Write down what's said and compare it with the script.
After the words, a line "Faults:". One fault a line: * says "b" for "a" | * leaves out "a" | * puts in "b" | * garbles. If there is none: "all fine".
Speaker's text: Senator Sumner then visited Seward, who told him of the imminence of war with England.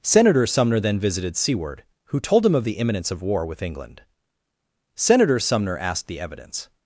Senator Sumner then visited Seward, who told him of the imminence of war with England. Senator Sumner asked the evidence
Faults:
* puts in "Senator Sumner asked the evidence"